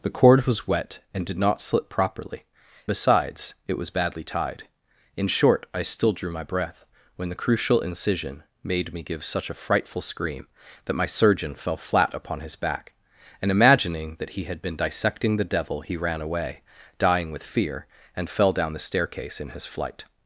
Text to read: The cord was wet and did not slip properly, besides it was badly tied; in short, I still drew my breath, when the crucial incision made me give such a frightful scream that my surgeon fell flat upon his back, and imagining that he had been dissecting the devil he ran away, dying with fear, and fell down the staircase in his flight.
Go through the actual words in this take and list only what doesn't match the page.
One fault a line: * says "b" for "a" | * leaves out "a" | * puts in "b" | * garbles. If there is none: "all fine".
all fine